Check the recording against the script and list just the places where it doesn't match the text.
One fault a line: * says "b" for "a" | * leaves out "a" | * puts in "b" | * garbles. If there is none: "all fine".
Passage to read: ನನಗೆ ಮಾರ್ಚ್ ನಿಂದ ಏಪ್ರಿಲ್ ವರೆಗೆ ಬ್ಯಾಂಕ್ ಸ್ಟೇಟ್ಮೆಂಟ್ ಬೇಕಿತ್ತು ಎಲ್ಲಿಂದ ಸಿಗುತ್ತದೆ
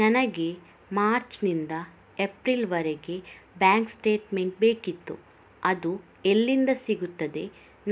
* puts in "ಅದು"